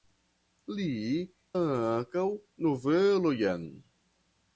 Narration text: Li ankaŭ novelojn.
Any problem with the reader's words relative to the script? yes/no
no